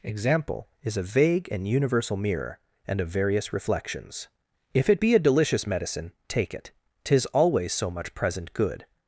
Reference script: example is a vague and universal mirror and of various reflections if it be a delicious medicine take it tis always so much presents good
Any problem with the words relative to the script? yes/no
yes